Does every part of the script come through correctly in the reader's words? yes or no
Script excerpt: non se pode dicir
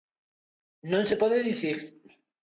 yes